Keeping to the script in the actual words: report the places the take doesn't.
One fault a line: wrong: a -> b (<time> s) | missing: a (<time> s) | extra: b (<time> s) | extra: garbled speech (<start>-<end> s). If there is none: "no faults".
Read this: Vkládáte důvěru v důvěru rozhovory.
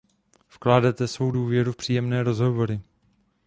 extra: svou (1.1 s)
wrong: důvěru -> příjemné (1.7 s)